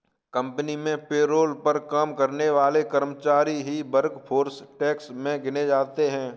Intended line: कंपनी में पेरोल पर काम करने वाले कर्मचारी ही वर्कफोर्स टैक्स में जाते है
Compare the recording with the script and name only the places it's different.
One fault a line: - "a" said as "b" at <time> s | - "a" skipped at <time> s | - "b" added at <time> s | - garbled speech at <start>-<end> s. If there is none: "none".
- "गिने" added at 5.4 s